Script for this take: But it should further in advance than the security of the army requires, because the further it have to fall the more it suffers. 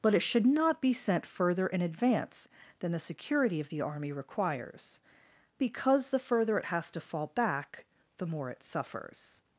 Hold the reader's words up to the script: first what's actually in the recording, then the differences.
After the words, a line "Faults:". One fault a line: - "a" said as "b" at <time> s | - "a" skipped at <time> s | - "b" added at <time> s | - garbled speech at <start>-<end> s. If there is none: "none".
But it should not be sent further in advance than the security of the army requires, because the further it has to fall back the more it suffers.
Faults:
- "not be sent" added at 0.5 s
- "have" said as "has" at 6.7 s
- "back" added at 7.3 s